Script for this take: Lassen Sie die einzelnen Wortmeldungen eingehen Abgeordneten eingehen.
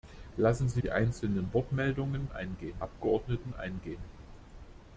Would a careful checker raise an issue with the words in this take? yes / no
no